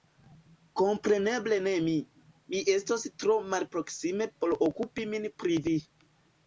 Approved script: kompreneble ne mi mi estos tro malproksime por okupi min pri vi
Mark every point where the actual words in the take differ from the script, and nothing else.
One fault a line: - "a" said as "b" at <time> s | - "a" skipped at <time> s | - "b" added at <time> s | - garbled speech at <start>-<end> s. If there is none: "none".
none